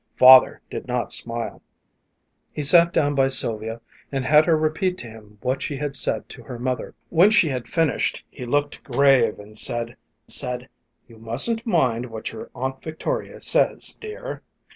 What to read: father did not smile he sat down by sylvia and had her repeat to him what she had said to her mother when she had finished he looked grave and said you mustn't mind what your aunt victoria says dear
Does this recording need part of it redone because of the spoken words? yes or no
yes